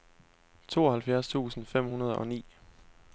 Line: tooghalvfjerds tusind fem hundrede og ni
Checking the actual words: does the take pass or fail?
pass